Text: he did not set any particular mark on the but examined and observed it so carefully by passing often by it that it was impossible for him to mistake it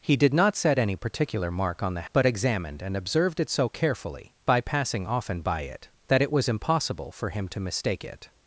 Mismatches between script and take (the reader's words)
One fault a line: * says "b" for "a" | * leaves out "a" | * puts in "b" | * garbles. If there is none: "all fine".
all fine